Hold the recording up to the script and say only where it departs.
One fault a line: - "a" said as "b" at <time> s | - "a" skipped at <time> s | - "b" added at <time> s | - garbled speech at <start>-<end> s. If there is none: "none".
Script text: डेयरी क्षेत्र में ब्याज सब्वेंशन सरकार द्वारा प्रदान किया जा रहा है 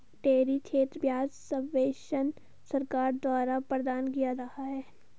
- "में" skipped at 1.1 s
- "जा" skipped at 4.3 s